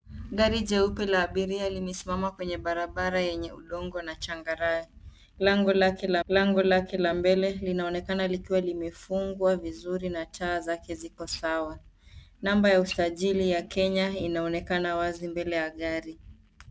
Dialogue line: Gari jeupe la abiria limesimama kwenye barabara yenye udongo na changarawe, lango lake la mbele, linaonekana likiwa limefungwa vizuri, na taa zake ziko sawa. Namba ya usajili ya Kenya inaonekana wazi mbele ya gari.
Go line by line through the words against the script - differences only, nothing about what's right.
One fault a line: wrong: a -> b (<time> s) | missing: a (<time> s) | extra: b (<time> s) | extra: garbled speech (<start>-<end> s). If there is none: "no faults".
extra: lango lake la (6.3 s)